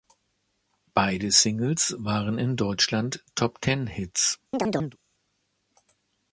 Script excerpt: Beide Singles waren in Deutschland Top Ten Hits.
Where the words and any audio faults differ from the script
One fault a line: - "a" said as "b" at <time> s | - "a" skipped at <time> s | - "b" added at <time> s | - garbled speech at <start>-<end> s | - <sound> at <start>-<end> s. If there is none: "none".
- chirp at 4.5-5.0 s